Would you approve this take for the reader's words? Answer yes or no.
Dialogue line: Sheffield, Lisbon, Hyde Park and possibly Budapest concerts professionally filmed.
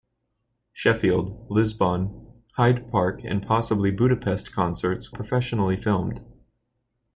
yes